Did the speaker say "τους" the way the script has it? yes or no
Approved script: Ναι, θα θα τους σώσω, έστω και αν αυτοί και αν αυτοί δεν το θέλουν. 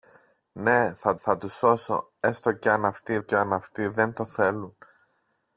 yes